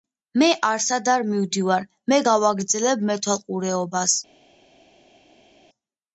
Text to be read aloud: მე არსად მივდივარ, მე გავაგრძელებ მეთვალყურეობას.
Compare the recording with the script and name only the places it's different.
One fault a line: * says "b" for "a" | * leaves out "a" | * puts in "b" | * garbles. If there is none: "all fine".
* puts in "არ"